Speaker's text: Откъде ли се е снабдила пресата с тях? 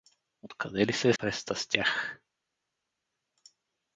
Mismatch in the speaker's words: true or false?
true